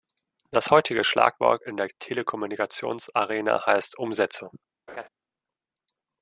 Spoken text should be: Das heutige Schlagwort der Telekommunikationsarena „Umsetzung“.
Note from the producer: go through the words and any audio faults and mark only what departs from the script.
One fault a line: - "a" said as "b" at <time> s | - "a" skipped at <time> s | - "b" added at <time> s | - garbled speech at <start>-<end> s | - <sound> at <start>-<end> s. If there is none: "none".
- "in" added at 1.6 s
- "heißt" added at 3.7 s
- laugh at 4.9-5.1 s